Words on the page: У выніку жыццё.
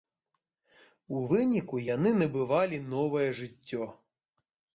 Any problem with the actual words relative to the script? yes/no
yes